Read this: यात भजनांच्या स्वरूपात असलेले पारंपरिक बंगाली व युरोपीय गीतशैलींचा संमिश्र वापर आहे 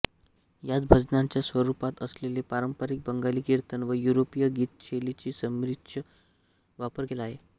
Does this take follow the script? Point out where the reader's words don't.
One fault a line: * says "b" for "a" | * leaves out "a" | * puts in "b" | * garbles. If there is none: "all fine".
* puts in "कीर्तन"
* puts in "केला"